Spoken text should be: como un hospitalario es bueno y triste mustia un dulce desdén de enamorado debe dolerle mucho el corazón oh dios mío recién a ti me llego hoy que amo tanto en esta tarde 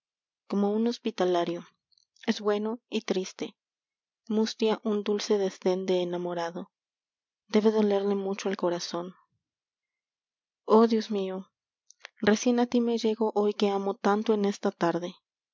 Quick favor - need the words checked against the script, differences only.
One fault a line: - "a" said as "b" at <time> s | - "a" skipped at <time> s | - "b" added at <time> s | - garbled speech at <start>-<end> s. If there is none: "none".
none